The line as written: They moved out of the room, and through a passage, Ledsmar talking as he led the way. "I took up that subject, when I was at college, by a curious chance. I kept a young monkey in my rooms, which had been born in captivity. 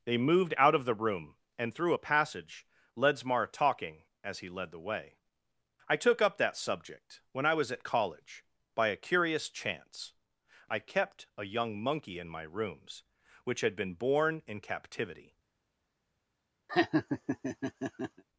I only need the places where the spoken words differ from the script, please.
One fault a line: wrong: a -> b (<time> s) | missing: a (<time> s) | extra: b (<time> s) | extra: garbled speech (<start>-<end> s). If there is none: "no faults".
no faults